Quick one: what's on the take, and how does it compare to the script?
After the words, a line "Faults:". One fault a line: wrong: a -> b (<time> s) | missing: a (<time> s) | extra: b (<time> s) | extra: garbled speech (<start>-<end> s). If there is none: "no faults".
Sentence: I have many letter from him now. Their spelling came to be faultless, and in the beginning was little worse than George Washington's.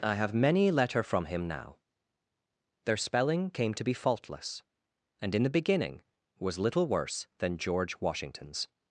I have many letter from him now. Their spelling came to be faultless, and in the beginning was little worse than George Washington's.
Faults:
no faults